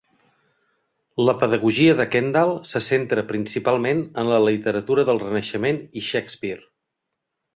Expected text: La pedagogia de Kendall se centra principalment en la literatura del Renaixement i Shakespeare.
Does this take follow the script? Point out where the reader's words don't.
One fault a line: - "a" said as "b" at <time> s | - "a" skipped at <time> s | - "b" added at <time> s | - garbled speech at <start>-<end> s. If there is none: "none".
none